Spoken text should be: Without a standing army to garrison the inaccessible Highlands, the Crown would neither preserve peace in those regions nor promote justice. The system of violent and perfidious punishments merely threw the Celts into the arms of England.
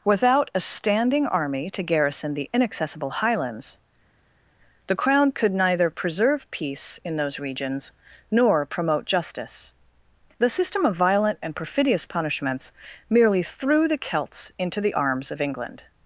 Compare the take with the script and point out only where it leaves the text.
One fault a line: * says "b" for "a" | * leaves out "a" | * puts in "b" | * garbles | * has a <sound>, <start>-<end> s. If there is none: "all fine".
* says "could" for "would"